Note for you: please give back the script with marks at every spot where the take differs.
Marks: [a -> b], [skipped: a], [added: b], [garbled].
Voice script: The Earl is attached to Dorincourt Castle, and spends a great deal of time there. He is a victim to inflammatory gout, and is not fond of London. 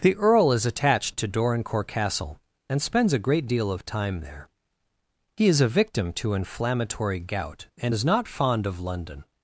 The Earl is attached to Dorincourt Castle, and spends a great deal of time there. He is a victim to inflammatory gout, and is not fond of London.